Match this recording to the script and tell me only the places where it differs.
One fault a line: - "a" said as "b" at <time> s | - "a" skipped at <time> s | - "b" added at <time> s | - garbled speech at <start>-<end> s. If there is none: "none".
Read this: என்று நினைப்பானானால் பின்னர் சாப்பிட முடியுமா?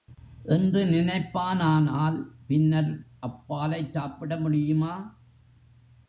- "அப்பாலைச்" added at 3.2 s